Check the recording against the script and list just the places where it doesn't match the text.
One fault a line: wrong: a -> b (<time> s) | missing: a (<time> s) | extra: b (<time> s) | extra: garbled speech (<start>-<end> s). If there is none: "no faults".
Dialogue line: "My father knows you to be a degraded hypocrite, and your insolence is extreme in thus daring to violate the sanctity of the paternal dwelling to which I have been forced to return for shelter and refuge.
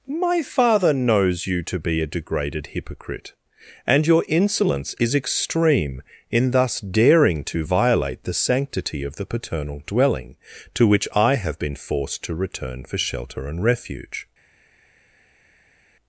no faults